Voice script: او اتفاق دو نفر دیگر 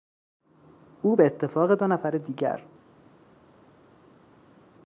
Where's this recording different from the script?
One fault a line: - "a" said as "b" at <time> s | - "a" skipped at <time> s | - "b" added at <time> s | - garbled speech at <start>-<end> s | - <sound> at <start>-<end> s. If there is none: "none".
- "به" added at 1.1 s